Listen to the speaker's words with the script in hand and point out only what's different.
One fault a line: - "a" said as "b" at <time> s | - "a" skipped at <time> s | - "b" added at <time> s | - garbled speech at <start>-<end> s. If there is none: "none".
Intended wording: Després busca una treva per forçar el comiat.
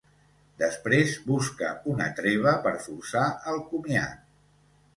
none